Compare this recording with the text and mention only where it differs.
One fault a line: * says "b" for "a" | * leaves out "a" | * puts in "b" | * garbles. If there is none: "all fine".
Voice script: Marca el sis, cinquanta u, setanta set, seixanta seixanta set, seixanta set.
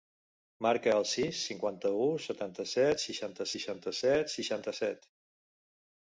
all fine